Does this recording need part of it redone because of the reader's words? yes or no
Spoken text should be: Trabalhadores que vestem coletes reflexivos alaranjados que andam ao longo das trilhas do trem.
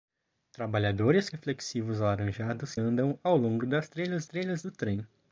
yes